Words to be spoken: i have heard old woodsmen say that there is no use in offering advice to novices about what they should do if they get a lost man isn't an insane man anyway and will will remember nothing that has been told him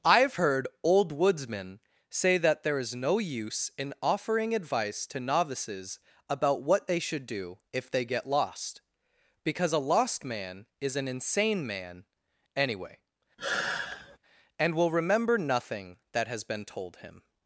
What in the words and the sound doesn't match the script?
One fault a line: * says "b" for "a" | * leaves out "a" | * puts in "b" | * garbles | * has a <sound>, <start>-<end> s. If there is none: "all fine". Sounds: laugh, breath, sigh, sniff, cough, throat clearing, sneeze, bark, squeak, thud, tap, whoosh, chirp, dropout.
* puts in "lost because"
* says "is" for "isn't"
* has a sigh, 13.4-14.2 s
* leaves out "will"